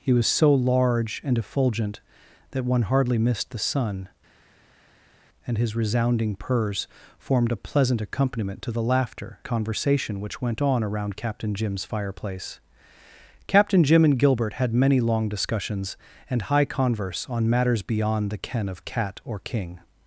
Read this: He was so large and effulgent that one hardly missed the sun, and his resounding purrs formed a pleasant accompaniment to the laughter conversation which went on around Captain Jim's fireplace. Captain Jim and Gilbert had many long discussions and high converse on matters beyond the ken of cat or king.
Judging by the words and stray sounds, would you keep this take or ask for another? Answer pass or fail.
pass